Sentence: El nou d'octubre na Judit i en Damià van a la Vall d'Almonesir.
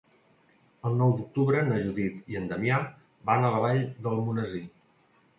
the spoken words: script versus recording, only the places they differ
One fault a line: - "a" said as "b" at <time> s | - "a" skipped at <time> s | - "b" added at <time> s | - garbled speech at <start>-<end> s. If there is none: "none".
none